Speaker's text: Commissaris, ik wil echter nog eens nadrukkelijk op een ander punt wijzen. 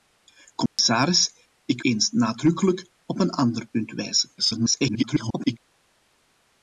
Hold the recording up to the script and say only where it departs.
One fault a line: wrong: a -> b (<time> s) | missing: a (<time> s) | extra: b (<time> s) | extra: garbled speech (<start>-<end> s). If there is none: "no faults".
missing: wil echter nog (1.8 s)
extra: garbled speech (4.4-5.6 s)